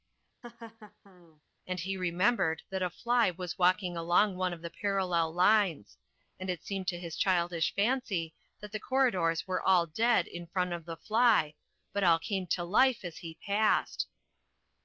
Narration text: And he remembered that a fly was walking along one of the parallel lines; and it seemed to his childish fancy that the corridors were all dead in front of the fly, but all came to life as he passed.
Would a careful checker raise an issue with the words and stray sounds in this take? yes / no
yes